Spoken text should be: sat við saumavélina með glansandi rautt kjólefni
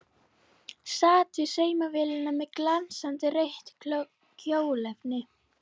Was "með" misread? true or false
false